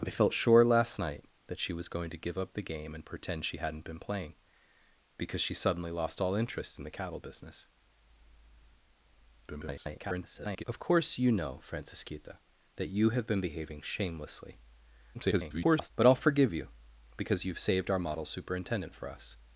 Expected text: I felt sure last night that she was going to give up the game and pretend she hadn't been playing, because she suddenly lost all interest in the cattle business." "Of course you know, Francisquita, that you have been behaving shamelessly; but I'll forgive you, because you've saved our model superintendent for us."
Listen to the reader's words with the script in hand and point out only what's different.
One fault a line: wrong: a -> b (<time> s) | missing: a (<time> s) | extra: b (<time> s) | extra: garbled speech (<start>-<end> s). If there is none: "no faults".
extra: garbled speech (9.5-10.6 s)
extra: garbled speech (15.1-15.9 s)